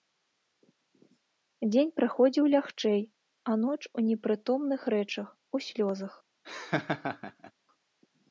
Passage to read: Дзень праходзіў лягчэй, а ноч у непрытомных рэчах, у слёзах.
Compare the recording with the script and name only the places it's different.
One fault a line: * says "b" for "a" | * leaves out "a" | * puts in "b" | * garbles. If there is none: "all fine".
all fine